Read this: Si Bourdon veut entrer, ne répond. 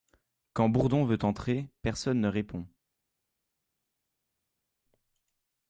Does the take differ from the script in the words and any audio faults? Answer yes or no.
yes